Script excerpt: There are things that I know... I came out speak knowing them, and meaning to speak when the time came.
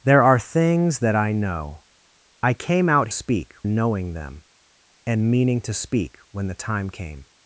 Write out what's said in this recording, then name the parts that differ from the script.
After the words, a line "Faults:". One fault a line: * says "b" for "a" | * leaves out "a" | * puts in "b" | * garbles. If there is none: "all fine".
There are things that I know... I came out speak knowing them, and meaning to speak when the time came.
Faults:
all fine